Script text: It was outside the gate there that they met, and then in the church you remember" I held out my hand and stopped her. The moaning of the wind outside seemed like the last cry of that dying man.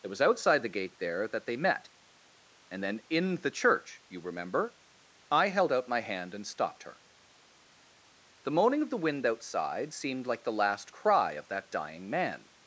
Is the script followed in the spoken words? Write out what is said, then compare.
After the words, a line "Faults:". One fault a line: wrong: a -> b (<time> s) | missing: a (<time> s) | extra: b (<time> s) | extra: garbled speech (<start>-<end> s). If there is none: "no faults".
It was outside the gate there that they met, and then in the church you remember" I held out my hand and stopped her. The moaning of the wind outside seemed like the last cry of that dying man.
Faults:
no faults